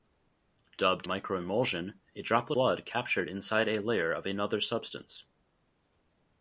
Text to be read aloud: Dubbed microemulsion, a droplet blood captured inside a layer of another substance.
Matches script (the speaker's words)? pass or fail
pass